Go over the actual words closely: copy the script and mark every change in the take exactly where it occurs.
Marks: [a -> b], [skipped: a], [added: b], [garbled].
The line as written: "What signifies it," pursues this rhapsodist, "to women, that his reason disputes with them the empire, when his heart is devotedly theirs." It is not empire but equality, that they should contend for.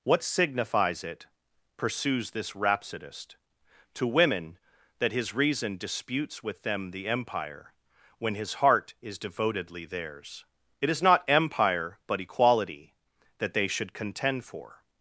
"What signifies it," pursues this rhapsodist, "to women, that his reason disputes with them the empire, when his heart is devotedly theirs." It is not empire but equality, that they should contend for.